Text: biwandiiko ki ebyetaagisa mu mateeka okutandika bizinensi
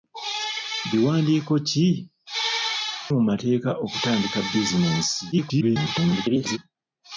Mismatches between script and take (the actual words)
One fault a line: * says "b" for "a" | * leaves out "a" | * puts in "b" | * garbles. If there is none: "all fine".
* leaves out "ebyetaagisa"
* garbles